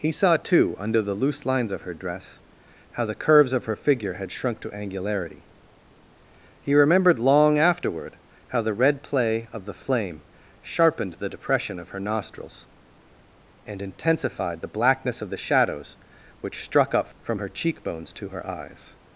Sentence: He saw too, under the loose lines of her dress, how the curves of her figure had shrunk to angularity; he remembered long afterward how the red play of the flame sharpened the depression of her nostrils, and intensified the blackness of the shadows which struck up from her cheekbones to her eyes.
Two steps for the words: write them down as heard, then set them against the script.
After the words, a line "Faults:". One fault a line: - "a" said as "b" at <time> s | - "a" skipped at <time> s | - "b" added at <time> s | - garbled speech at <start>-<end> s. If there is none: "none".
He saw too, under the loose lines of her dress, how the curves of her figure had shrunk to angularity; he remembered long afterward how the red play of the flame sharpened the depression of her nostrils, and intensified the blackness of the shadows which struck up from her cheekbones to her eyes.
Faults:
none